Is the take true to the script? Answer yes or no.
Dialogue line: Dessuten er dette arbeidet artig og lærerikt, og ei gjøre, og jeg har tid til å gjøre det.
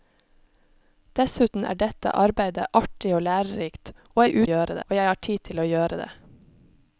yes